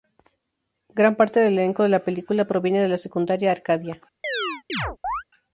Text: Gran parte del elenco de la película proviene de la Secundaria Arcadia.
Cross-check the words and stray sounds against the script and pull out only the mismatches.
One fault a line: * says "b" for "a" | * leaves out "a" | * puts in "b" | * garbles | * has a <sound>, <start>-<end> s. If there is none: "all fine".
* has a chirp, 4.2-5.2 s